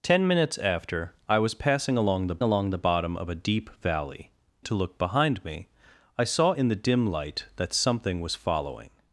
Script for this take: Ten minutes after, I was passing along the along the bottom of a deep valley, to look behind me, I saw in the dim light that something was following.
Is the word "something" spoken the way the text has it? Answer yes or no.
yes